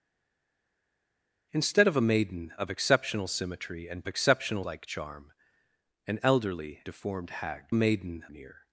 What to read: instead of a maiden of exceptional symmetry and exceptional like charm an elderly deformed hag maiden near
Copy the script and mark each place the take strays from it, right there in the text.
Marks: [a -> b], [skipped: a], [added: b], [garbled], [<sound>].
instead of a maiden of exceptional symmetry and exceptional like charm an elderly deformed hag maiden near